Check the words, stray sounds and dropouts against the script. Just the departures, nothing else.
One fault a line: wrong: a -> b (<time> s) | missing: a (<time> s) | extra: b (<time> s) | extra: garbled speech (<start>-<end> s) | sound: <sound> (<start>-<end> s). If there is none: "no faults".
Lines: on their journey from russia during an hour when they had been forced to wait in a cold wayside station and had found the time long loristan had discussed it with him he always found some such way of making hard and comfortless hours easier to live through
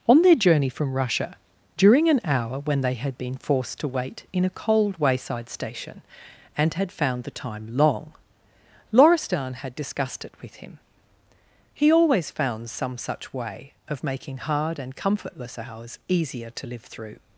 no faults